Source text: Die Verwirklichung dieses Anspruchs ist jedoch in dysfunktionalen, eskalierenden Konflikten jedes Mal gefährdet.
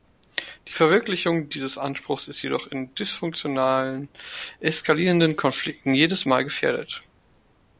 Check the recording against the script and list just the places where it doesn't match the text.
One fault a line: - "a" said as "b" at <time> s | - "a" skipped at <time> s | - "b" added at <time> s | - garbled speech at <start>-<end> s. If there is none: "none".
none